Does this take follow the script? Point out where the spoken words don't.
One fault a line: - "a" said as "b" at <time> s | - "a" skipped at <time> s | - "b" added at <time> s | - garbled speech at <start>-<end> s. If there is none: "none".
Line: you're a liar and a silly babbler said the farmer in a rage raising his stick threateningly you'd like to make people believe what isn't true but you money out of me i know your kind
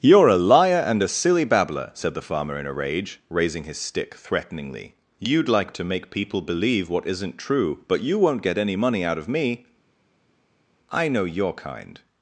- "won't get any" added at 8.2 s